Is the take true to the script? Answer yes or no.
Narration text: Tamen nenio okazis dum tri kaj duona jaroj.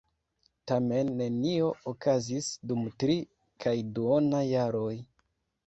yes